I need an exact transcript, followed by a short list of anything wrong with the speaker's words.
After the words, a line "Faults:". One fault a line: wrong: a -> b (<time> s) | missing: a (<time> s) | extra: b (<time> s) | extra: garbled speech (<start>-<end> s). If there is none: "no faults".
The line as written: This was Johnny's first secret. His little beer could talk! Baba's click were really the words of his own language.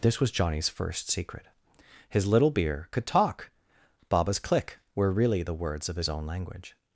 This was Johnny's first secret. His little beer could talk! Baba's click were really the words of his own language.
Faults:
no faults